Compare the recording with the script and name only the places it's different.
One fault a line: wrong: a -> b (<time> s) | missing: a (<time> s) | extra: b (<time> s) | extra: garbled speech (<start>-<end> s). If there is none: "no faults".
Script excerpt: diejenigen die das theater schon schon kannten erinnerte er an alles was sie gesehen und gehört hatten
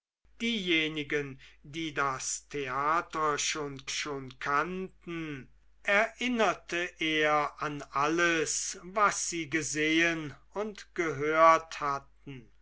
no faults